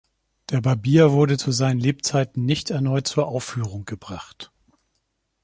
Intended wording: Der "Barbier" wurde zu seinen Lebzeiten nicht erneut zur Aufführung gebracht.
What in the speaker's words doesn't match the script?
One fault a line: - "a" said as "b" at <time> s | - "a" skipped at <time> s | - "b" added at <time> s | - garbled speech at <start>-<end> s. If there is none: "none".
none